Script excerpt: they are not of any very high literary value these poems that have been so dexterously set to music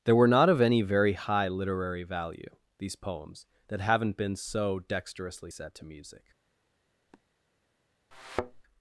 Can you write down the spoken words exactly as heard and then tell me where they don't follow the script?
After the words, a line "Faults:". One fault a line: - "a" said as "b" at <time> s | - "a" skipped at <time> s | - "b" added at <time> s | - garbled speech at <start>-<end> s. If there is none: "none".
they were not of any very high literary value these poems that haven't been so dexterously set to music
Faults:
- "are" said as "were" at 0.1 s
- "have" said as "haven't" at 3.8 s